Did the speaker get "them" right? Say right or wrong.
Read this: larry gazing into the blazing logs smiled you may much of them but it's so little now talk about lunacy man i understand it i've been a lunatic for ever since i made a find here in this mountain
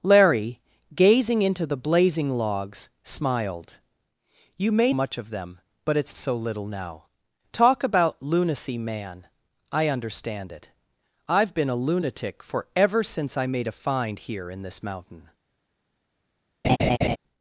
right